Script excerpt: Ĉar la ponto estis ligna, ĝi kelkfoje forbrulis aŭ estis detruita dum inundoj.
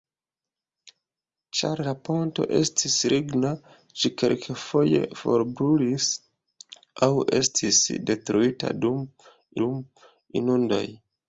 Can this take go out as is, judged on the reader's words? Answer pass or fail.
fail